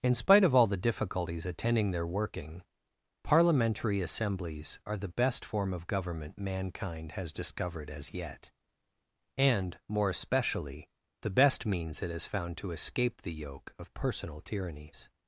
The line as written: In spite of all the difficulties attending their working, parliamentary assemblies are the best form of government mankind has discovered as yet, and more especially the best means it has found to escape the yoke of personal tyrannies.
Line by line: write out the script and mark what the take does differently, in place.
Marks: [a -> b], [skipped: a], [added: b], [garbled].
In spite of all the difficulties attending their working, parliamentary assemblies are the best form of government mankind has discovered as yet, and more especially the best means it has found to escape the yoke of personal tyrannies.